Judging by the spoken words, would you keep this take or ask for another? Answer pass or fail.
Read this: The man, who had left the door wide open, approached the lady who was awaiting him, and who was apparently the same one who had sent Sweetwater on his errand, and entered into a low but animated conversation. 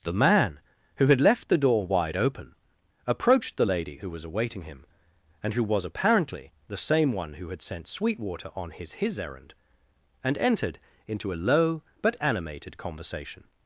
fail